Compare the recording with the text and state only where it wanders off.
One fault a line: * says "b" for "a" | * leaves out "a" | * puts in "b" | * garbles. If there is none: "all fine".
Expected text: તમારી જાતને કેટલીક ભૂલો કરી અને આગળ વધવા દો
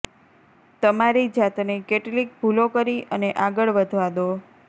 all fine